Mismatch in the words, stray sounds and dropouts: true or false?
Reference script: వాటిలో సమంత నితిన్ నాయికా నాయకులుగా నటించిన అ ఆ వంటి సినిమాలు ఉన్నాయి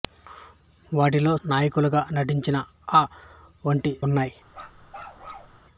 true